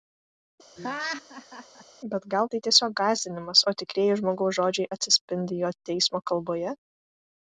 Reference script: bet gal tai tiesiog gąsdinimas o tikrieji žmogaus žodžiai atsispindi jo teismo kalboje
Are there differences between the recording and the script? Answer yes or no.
no